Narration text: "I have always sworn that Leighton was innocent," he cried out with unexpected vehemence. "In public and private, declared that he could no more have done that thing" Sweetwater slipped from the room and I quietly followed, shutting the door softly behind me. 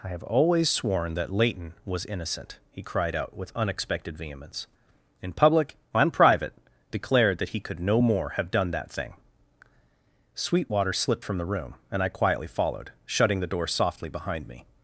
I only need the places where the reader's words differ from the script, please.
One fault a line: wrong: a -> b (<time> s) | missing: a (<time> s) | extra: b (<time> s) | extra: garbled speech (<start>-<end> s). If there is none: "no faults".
no faults